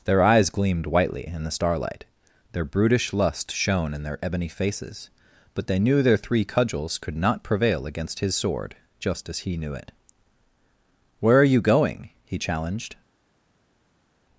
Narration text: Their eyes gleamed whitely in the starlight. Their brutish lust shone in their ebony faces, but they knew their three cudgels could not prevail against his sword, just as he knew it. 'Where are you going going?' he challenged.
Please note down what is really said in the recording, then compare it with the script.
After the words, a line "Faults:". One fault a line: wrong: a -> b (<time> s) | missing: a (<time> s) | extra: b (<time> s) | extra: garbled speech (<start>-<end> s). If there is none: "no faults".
Their eyes gleamed whitely in the starlight. Their brutish lust shone in their ebony faces, but they knew their three cudgels could not prevail against his sword, just as he knew it. 'Where are you going?' he challenged.
Faults:
missing: going (12.1 s)